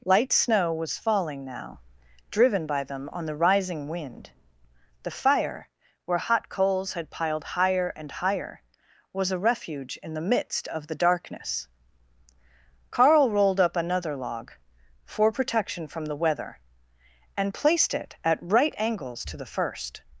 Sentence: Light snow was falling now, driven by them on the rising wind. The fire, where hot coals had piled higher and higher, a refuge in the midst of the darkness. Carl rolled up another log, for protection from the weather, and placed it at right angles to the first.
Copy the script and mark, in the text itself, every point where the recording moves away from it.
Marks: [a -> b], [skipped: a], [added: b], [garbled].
Light snow was falling now, driven by them on the rising wind. The fire, where hot coals had piled higher and higher, [added: was] a refuge in the midst of the darkness. Carl rolled up another log, for protection from the weather, and placed it at right angles to the first.